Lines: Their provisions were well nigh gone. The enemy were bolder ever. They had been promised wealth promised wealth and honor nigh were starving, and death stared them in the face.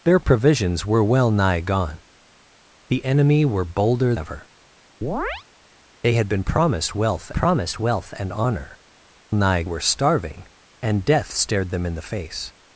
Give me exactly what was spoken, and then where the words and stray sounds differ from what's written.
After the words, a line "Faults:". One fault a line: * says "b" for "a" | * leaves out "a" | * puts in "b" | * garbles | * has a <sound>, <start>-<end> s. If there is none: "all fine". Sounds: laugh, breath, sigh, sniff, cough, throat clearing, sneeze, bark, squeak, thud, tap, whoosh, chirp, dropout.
Their provisions were well nigh gone. The enemy were bolder ever. They had been promised wealth promised wealth and honor nigh were starving, and death stared them in the face.
Faults:
* has a chirp, 5.0-5.4 s